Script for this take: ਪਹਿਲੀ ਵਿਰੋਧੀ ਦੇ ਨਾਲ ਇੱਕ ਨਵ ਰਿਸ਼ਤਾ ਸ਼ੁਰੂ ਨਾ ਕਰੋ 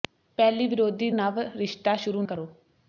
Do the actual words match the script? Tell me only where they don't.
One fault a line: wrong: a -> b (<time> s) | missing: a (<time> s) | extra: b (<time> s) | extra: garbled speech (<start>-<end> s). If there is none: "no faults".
missing: ਦੇ ਨਾਲ ਇੱਕ (1.1 s)
missing: ਨਾ (2.2 s)